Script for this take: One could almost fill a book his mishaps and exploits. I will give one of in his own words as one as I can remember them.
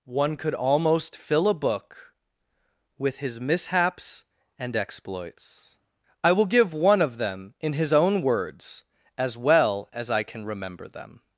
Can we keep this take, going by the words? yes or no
no